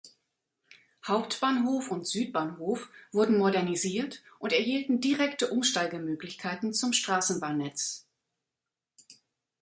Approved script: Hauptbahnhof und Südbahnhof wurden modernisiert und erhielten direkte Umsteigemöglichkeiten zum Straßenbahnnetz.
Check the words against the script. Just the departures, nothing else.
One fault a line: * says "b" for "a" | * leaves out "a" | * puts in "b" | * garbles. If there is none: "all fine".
all fine